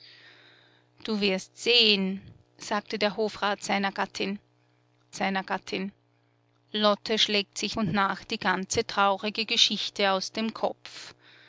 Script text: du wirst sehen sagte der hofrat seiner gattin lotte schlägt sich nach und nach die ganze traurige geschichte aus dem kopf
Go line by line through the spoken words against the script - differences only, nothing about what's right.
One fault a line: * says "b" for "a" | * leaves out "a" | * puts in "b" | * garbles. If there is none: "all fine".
* puts in "seiner gattin"
* leaves out "nach"